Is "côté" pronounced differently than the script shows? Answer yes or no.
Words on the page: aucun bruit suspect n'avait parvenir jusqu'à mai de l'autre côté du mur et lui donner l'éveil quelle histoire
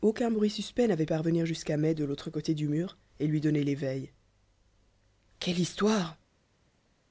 no